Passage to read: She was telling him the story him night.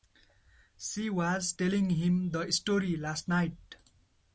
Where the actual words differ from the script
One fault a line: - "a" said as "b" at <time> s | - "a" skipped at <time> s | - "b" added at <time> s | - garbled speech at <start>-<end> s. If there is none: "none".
- "him" said as "last" at 3.0 s